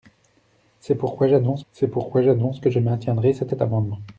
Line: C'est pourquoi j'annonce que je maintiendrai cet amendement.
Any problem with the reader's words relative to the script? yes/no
yes